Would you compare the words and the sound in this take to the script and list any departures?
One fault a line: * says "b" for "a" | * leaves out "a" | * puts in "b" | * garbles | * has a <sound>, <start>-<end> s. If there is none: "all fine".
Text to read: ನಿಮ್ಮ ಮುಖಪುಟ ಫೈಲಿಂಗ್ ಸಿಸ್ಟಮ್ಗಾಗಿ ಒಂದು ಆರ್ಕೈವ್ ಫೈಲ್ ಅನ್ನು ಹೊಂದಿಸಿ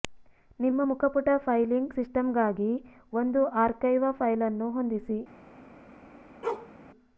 * has a bark, 6.4-6.7 s